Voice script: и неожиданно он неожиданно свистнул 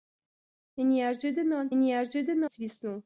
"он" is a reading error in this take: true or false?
false